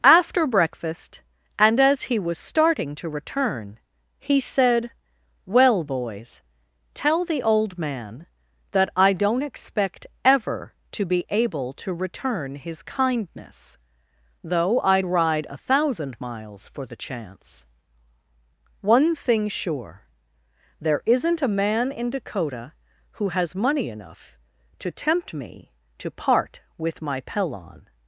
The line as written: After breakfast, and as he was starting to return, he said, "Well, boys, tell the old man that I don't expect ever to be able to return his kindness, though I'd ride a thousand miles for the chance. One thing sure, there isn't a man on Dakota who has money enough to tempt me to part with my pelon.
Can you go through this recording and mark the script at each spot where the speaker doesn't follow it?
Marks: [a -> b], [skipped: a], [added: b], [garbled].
After breakfast, and as he was starting to return, he said, "Well, boys, tell the old man that I don't expect ever to be able to return his kindness, though I'd ride a thousand miles for the chance. One thing sure, there isn't a man [on -> in] Dakota who has money enough to tempt me to part with my pelon.